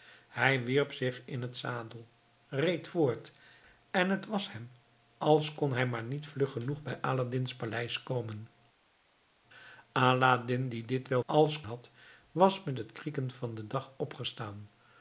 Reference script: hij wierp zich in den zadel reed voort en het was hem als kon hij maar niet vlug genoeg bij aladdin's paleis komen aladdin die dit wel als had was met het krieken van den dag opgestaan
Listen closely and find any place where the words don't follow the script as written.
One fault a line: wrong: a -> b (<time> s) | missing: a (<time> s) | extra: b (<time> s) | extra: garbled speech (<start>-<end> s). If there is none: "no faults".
no faults